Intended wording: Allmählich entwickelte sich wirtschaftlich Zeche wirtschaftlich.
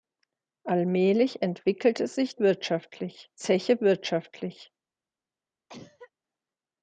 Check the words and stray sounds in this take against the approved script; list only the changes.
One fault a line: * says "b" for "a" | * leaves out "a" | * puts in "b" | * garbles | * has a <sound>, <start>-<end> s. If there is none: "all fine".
* has a cough, 5.7-6.1 s